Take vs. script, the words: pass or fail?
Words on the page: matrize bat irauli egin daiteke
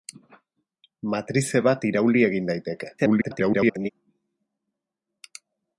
fail